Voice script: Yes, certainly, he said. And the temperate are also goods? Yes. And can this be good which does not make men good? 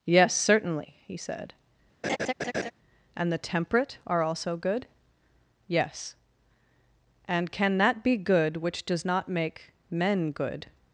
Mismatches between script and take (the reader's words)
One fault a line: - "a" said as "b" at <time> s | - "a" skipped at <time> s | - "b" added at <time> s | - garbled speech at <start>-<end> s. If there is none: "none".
- "goods" said as "good" at 4.6 s
- "this" said as "that" at 7.8 s